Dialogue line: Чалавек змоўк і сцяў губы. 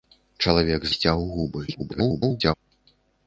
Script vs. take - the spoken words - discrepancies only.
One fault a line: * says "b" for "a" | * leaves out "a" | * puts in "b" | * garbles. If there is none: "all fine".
* leaves out "змоўк"
* garbles